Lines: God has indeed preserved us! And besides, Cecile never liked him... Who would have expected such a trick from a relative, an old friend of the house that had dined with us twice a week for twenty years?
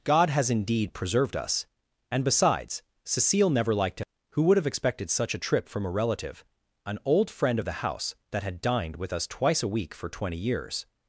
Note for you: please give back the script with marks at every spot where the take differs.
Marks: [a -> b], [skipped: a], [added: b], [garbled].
God has indeed preserved us! And besides, Cecile never liked him... Who would have expected such a [trick -> trip] from a relative, an old friend of the house that had dined with us twice a week for twenty years?